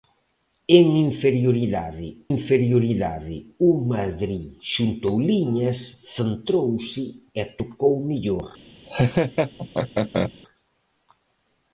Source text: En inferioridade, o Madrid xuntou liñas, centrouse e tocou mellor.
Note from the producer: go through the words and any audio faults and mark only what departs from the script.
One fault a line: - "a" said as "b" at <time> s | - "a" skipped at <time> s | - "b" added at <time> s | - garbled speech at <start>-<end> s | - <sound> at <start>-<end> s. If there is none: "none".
- "inferioridade" added at 2.3 s
- laugh at 8.9-10.3 s